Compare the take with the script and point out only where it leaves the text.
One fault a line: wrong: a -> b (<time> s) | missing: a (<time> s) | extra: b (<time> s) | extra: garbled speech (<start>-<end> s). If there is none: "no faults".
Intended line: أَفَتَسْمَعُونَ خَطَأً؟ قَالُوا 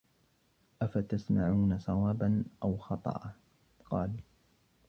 extra: صَوَابًا أَوْ (1.8 s)